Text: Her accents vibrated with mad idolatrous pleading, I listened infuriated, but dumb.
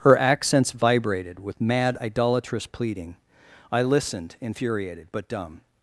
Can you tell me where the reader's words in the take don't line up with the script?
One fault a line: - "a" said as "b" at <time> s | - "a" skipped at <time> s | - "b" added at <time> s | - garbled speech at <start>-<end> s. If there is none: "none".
none